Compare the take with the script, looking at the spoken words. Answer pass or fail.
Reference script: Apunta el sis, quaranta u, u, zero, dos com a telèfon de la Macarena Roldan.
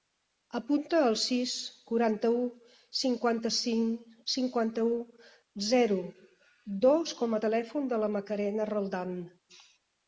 fail